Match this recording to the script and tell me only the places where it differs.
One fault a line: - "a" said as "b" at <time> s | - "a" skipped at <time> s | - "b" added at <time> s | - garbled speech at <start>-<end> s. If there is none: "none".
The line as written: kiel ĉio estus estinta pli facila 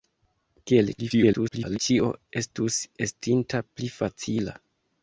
- garbled speech at 1.0-1.8 s